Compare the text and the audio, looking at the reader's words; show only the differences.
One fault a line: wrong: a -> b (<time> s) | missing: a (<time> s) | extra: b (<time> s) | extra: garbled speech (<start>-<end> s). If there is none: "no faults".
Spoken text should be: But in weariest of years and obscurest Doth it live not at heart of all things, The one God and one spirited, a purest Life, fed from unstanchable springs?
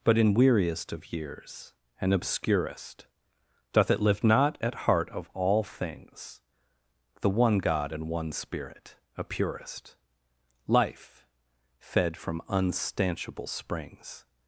wrong: spirited -> spirit (8.3 s)